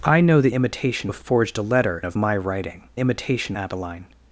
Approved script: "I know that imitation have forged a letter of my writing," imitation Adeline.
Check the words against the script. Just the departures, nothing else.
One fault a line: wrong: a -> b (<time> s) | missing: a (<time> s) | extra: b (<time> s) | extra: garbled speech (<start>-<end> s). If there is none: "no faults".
no faults